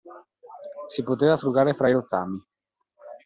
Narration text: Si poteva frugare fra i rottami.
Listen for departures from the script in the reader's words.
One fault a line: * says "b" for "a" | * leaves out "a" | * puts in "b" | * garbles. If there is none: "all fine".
all fine